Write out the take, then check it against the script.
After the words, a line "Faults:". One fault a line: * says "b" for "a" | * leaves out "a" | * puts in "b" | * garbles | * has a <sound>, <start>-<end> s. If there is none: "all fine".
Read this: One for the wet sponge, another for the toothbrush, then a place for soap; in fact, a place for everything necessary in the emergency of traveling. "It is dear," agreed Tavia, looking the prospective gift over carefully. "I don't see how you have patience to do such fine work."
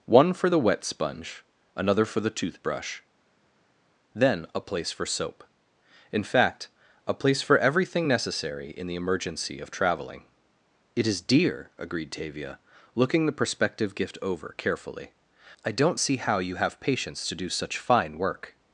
One for the wet sponge, another for the toothbrush, then a place for soap; in fact, a place for everything necessary in the emergency of traveling. "It is dear," agreed Tavia, looking the prospective gift over carefully. "I don't see how you have patience to do such fine work."
Faults:
all fine